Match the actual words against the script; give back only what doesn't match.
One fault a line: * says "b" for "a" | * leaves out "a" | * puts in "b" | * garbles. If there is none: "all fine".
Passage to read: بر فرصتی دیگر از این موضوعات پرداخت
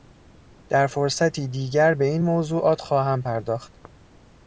* says "در" for "بر"
* says "به" for "از"
* puts in "خواهم"